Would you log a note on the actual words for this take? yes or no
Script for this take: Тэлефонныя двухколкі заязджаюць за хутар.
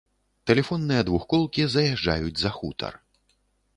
no